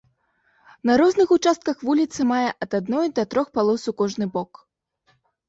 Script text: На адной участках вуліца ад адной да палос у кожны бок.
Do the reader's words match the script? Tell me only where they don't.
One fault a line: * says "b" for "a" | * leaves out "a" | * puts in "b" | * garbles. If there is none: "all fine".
* says "розных" for "адной"
* puts in "мае"
* puts in "трох"